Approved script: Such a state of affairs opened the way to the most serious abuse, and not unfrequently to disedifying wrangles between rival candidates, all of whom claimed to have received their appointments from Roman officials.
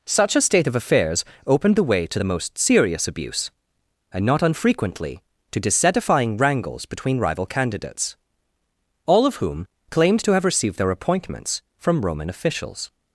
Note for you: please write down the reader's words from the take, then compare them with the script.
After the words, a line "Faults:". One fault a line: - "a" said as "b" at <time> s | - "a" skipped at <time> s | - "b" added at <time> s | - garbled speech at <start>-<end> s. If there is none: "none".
Such a state of affairs opened the way to the most serious abuse, and not unfrequently to disedifying wrangles between rival candidates, all of whom claimed to have received their appointments from Roman officials.
Faults:
none